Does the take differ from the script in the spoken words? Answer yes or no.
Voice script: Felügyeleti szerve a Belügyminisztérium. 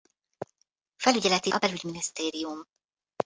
yes